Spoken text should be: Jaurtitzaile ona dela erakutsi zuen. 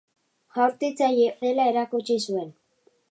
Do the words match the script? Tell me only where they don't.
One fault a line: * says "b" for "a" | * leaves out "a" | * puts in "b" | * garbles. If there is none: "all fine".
* leaves out "ona"